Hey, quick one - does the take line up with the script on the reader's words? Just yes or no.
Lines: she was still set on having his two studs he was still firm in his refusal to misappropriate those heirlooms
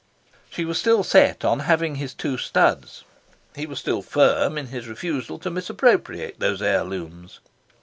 yes